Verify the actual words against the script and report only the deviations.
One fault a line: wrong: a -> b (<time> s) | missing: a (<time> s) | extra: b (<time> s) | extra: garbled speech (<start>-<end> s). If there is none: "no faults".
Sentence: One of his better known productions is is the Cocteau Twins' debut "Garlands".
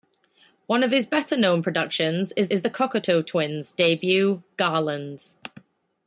no faults